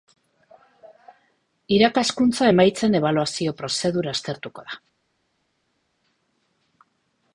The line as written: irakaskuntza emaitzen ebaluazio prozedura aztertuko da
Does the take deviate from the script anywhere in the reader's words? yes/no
no